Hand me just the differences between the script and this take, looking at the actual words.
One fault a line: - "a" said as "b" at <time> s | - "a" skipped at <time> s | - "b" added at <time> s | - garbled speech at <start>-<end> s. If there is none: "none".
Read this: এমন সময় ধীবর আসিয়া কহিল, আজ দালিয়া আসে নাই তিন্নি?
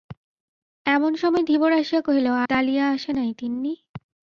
- "আজ" skipped at 2.3 s